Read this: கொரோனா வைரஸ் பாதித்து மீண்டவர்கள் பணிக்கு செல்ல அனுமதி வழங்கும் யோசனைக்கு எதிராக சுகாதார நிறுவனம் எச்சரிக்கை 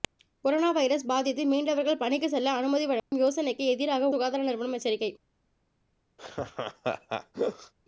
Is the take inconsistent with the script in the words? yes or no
no